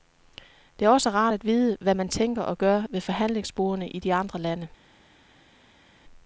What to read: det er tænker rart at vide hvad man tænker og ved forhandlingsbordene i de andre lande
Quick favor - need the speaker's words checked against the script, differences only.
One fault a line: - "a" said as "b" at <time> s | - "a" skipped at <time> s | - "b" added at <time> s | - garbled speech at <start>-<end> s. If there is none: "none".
- "tænker" said as "også" at 0.9 s
- "gør" added at 2.6 s